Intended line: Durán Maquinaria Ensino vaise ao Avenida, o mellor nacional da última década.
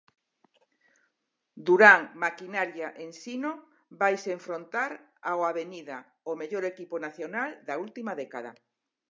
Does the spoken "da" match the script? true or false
true